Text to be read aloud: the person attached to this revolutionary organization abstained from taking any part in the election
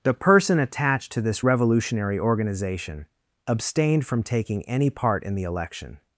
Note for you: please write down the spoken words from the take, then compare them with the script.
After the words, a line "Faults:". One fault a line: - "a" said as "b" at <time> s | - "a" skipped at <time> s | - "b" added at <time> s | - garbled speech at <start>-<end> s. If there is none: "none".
the person attached to this revolutionary organization abstained from taking any part in the election
Faults:
none